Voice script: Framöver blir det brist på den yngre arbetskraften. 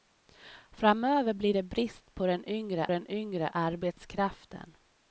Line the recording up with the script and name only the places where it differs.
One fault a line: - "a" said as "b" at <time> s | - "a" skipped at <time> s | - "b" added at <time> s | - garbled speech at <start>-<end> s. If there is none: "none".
- "den yngre" added at 2.9 s